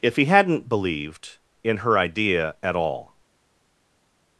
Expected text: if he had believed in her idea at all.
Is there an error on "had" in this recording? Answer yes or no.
yes